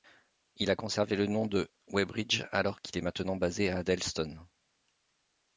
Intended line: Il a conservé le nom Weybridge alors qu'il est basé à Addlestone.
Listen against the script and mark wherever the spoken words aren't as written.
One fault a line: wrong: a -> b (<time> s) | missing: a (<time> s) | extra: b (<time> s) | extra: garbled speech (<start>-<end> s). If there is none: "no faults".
extra: de (1.4 s)
extra: maintenant (3.0 s)